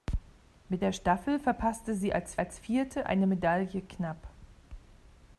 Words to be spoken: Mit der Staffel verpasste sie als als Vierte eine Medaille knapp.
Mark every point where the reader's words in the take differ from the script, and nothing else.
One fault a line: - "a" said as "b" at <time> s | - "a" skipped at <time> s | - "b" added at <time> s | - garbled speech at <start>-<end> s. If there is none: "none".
none